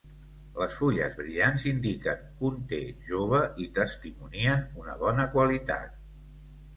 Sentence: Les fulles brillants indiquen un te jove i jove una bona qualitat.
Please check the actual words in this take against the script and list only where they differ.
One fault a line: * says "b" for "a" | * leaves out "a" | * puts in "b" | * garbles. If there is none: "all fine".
* says "testimonien" for "jove"